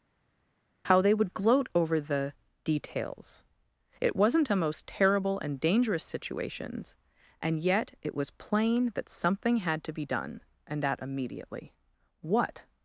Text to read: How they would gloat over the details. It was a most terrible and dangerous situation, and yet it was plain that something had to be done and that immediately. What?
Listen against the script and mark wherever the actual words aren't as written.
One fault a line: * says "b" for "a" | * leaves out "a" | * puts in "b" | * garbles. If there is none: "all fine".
* says "wasn't" for "was"
* says "situations" for "situation"